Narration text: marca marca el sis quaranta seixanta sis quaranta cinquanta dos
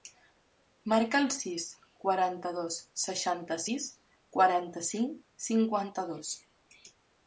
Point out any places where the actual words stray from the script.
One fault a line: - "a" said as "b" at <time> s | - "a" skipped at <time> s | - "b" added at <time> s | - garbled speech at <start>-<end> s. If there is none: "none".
- "marca" skipped at 1.2 s
- "dos" added at 2.6 s
- "cinc" added at 4.9 s